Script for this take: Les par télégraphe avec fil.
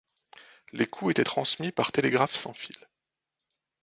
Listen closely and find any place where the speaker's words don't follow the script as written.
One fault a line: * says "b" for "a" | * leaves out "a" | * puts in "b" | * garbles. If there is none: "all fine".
* puts in "coups étaient transmis"
* says "sans" for "avec"